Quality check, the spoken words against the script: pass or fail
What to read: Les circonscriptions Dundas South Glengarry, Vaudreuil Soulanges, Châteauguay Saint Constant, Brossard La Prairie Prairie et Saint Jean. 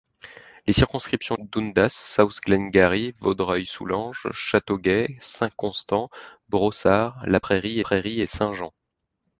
pass